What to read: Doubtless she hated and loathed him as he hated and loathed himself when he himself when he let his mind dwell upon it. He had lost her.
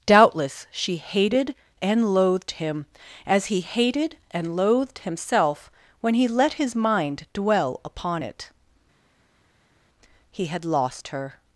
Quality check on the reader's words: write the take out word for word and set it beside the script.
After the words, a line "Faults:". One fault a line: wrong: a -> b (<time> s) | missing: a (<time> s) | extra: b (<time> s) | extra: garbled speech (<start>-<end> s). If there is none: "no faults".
Doubtless she hated and loathed him as he hated and loathed himself when he let his mind dwell upon it. He had lost her.
Faults:
missing: himself when he (6.3 s)